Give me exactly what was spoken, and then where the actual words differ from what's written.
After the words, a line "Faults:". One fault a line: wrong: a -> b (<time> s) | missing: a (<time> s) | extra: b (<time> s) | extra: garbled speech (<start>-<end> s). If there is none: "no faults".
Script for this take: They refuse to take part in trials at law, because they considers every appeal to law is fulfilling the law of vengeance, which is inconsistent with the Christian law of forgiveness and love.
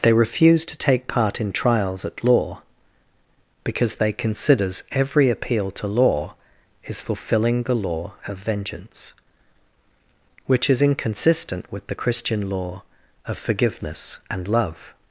They refuse to take part in trials at law, because they considers every appeal to law is fulfilling the law of vengeance, which is inconsistent with the Christian law of forgiveness and love.
Faults:
no faults